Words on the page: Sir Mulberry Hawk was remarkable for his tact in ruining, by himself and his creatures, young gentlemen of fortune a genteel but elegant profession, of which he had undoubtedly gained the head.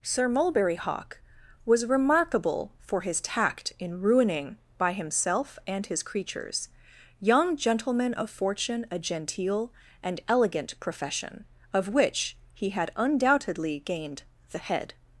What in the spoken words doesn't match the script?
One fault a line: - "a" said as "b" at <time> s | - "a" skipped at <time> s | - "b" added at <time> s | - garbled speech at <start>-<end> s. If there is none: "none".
- "but" said as "and" at 10.0 s